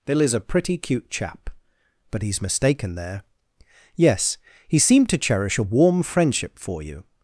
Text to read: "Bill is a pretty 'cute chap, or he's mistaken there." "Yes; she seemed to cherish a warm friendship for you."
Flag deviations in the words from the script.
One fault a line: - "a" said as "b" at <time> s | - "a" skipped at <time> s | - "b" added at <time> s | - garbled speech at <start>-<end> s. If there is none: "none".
- "or" said as "but" at 2.1 s
- "she" said as "he" at 4.7 s